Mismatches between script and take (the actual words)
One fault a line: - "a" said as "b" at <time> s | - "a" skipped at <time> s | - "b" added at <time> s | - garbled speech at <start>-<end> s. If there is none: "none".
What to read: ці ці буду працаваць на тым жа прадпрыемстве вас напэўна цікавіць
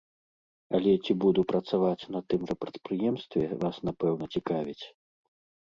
- "ці" said as "але" at 0.8 s